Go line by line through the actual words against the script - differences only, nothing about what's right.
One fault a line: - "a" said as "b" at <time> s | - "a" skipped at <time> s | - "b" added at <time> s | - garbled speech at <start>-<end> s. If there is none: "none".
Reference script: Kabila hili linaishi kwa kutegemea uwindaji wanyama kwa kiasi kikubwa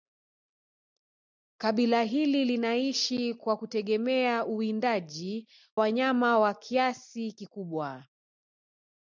none